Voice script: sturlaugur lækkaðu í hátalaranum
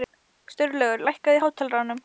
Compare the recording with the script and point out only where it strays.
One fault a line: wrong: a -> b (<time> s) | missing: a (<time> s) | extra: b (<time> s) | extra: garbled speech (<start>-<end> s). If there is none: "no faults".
no faults